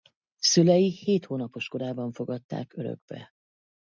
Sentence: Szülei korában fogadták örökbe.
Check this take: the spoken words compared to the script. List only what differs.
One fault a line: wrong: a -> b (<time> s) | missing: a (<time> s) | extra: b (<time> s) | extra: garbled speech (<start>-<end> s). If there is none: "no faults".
extra: hét hónapos (0.9 s)